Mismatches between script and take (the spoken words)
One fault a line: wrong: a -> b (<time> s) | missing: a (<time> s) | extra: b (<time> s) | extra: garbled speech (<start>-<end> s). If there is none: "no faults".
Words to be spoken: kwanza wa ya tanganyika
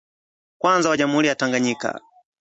extra: jamhuri (0.9 s)